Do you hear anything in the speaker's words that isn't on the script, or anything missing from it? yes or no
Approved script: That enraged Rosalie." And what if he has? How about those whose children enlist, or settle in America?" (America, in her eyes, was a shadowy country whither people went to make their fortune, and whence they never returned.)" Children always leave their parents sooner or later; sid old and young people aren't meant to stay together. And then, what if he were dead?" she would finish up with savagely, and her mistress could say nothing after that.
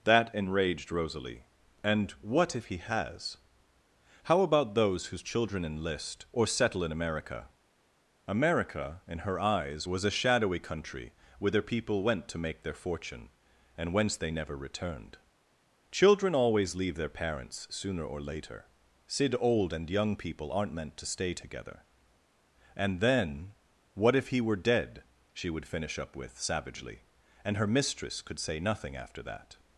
no